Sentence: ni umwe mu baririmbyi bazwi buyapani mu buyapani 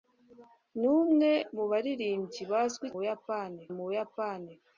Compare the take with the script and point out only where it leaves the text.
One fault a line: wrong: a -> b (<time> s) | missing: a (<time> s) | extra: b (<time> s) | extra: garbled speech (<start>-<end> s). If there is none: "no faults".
no faults